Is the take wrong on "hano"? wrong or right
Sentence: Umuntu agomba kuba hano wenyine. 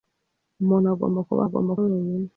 wrong